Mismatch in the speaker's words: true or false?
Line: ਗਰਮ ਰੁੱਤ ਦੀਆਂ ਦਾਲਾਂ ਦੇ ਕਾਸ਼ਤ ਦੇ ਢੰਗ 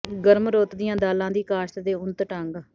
true